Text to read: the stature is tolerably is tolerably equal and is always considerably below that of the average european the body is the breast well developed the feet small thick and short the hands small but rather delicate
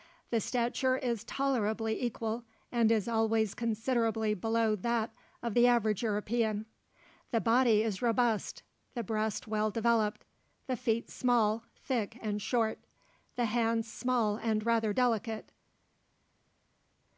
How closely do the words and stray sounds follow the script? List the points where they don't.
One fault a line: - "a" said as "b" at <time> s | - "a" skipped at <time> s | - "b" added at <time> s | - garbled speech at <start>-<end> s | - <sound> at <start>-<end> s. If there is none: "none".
- "is tolerably" skipped at 2.0 s
- "robust" added at 8.0 s
- "but" said as "and" at 14.4 s